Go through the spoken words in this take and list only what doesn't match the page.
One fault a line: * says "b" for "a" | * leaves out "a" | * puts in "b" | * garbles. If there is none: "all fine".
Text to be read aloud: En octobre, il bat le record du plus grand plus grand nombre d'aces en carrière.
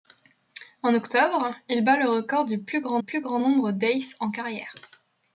all fine